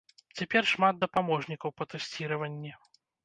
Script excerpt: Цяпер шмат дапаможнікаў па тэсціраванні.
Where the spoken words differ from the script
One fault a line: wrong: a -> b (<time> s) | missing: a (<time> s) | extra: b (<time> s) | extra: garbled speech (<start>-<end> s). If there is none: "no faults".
no faults